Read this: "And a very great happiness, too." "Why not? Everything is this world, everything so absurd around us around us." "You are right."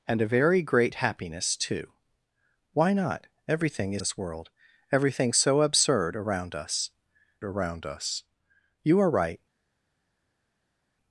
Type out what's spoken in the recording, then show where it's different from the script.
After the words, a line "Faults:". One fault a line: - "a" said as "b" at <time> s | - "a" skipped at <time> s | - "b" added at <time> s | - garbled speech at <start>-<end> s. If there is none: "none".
"And a very great happiness, too." "Why not? Everything is this world, everything so absurd around us around us." "You are right."
Faults:
none